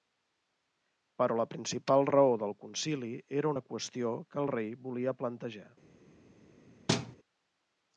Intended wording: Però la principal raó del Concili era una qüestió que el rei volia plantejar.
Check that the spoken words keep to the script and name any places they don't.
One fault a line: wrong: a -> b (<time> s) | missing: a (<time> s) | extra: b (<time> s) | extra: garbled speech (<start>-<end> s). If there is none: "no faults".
no faults